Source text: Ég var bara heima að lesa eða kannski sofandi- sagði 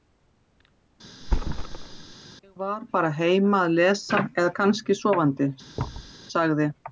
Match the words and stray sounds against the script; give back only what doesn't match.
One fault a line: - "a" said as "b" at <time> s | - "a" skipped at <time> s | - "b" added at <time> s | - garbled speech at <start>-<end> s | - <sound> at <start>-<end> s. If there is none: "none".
- thud at 1.2-2.1 s
- thud at 5.8-6.1 s